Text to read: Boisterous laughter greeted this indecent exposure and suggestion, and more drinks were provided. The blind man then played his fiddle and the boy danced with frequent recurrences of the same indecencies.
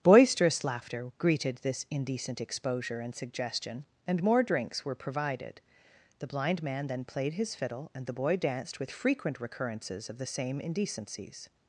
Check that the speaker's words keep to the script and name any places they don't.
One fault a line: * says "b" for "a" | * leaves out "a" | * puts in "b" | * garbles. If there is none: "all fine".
all fine